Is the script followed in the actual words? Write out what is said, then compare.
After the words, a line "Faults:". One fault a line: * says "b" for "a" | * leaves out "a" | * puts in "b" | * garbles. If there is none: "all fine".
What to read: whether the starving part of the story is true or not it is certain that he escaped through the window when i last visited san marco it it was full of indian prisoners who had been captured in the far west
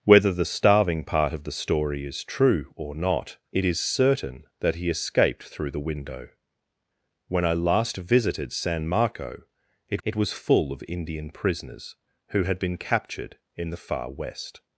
whether the starving part of the story is true or not it is certain that he escaped through the window when i last visited san marco it it was full of indian prisoners who had been captured in the far west
Faults:
all fine